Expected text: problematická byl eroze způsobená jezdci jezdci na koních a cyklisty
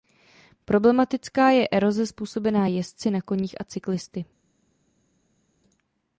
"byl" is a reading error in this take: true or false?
true